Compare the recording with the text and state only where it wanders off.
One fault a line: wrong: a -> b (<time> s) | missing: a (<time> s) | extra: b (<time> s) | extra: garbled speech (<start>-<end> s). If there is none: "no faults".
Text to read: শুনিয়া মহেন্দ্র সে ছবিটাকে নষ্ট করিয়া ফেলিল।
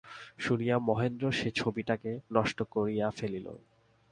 no faults